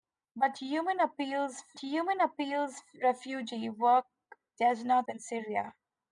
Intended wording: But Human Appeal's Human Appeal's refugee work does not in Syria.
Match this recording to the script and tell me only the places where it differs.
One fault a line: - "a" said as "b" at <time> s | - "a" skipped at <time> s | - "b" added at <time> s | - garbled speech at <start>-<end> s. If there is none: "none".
none